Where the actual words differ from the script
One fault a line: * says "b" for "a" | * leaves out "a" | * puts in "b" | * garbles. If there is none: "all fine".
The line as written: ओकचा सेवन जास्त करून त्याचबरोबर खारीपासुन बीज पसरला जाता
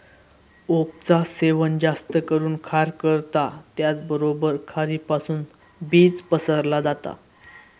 * puts in "खार करता"